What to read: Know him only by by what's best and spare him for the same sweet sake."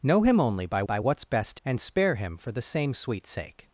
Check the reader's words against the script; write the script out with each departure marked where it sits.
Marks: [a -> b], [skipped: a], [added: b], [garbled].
Know him only by by what's best and spare him for the same sweet sake."